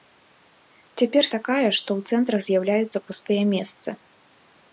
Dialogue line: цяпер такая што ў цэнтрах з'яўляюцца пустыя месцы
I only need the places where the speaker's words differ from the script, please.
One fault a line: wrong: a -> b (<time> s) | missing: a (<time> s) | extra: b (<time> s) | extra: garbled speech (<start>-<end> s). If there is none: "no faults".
no faults